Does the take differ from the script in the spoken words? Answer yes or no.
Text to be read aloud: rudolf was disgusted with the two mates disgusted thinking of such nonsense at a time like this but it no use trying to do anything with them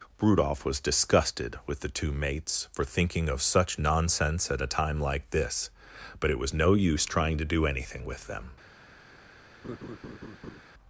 yes